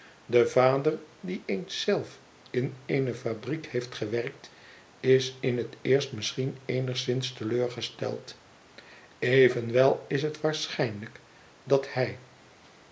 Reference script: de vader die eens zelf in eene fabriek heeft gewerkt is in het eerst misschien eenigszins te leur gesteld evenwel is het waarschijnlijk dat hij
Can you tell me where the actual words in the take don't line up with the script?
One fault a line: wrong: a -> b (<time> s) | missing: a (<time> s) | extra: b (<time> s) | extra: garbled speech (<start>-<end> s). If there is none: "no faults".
no faults